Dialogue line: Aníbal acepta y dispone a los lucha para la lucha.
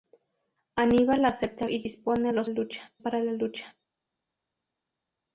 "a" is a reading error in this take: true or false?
false